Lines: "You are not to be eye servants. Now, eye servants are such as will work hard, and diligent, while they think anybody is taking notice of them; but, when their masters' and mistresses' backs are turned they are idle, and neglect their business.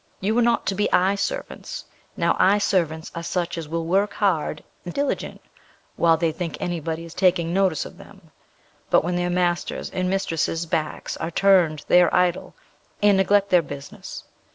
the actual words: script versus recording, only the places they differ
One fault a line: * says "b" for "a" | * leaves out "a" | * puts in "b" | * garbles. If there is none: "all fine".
all fine